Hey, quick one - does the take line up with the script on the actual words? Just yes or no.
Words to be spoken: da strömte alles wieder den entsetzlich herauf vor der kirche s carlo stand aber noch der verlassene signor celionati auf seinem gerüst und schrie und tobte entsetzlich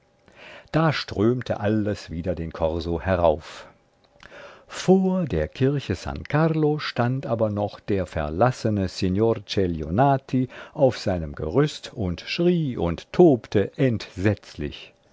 no